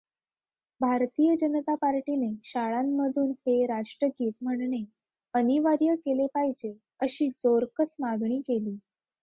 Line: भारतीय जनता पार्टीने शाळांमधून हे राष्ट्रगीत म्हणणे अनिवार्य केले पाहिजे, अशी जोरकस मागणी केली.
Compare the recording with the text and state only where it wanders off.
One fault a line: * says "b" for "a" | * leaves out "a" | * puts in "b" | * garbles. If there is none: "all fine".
all fine